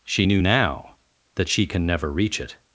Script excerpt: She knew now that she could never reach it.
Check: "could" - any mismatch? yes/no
yes